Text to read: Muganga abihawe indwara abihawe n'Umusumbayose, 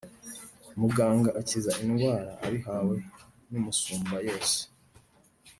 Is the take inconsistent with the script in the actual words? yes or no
yes